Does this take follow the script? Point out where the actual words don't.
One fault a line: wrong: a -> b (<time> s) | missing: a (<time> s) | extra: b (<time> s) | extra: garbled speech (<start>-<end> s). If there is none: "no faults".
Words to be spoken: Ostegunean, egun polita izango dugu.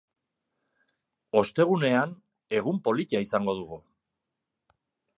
no faults